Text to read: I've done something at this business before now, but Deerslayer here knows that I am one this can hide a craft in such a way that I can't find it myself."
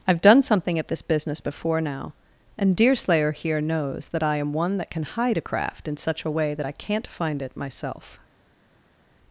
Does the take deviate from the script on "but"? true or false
true